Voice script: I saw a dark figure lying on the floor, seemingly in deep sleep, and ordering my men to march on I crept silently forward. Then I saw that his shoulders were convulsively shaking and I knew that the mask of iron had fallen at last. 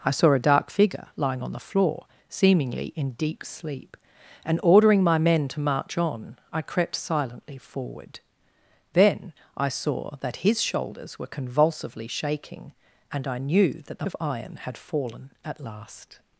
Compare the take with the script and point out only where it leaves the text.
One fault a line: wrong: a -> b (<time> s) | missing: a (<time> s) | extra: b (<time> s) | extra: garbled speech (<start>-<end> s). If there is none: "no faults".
missing: mask (14.1 s)